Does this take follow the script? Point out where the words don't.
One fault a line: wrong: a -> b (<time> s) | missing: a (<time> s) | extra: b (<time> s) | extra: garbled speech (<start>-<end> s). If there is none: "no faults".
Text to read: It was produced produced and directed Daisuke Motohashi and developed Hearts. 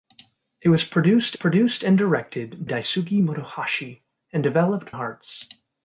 no faults